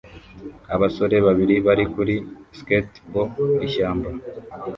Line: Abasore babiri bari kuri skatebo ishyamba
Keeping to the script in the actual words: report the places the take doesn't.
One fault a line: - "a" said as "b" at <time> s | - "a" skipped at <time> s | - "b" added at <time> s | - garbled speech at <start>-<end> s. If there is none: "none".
none